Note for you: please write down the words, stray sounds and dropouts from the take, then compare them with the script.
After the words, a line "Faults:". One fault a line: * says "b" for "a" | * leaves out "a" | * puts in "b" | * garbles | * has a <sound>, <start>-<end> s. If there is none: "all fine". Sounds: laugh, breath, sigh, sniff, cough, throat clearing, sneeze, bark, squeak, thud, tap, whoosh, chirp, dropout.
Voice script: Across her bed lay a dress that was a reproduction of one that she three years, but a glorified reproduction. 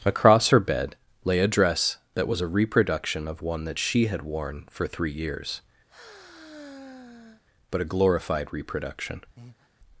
Across her bed lay a dress that was a reproduction of one that she had worn for three years, but a glorified reproduction.
Faults:
* puts in "had worn for"
* has a sigh, 5.9-7.4 s
* has a breath, 9.4-9.7 s